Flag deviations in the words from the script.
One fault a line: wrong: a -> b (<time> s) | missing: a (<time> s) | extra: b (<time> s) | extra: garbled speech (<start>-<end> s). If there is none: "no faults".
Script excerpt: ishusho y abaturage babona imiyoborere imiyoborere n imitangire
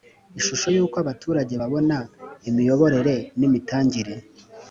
extra: uko (0.8 s)
missing: imiyoborere (3.1 s)